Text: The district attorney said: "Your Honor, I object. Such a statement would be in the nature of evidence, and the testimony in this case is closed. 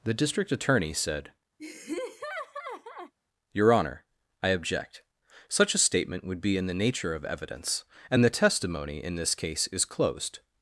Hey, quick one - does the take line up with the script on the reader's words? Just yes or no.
yes